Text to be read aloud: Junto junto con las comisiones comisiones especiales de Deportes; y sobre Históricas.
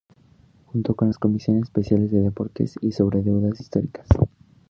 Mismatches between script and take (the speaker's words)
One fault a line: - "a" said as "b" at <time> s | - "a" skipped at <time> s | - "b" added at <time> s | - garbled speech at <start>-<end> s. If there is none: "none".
- "junto" skipped at 0.9 s
- "comisiones" skipped at 1.6 s
- "Deudas" added at 3.2 s